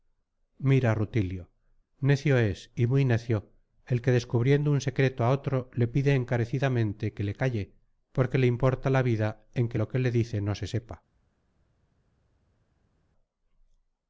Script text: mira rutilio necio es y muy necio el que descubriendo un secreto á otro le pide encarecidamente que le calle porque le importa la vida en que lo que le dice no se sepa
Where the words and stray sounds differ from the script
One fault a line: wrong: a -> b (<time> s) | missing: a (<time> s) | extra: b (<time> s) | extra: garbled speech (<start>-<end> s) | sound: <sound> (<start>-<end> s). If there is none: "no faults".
no faults